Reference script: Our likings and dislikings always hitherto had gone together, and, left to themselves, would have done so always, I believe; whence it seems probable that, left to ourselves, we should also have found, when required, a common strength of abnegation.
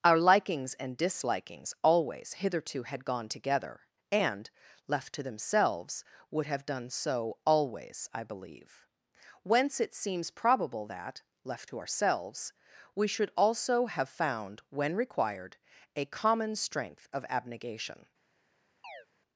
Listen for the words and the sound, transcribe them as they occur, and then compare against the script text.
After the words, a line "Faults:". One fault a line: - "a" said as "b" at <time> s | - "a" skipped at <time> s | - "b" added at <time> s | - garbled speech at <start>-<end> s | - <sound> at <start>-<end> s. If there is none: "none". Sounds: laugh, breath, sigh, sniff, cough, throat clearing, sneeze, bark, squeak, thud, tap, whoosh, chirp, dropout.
Our likings and dislikings always hitherto had gone together, and, left to themselves, would have done so always, I believe; whence it seems probable that, left to ourselves, we should also have found, when required, a common strength of abnegation.
Faults:
- chirp at 18.8-19.1 s